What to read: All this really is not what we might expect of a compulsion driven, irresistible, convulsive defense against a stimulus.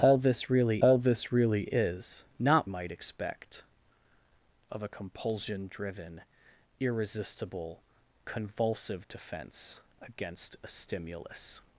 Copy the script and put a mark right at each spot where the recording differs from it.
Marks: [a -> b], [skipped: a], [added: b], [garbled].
All this really [added: all this really] is not [skipped: what we] might expect of a compulsion driven, irresistible, convulsive defense against a stimulus.